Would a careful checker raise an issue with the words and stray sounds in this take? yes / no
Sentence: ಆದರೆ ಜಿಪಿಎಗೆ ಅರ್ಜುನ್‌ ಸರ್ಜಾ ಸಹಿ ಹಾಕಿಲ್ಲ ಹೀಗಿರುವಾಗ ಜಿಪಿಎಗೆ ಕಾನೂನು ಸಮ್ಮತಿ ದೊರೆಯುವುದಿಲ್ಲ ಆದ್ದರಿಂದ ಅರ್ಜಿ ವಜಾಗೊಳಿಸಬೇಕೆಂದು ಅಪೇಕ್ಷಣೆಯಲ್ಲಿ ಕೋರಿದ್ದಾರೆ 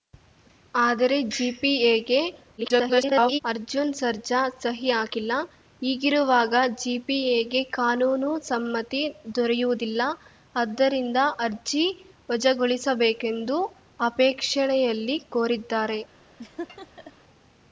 yes